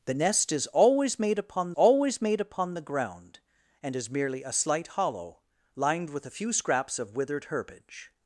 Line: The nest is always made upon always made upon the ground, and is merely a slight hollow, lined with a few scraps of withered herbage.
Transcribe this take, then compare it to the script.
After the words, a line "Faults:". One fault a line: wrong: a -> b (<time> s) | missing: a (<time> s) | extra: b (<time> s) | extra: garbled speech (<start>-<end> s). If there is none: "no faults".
The nest is always made upon always made upon the ground, and is merely a slight hollow, lined with a few scraps of withered herbage.
Faults:
no faults